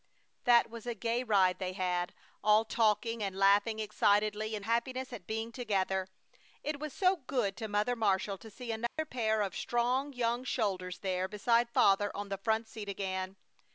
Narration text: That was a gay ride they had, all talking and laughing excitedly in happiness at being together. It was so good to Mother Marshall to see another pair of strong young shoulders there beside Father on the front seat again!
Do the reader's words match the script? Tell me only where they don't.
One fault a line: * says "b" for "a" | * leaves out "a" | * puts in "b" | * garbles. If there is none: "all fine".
all fine